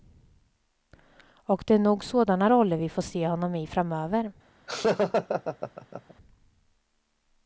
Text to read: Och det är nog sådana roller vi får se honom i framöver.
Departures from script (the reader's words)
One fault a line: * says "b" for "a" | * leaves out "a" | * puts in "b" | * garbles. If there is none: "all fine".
all fine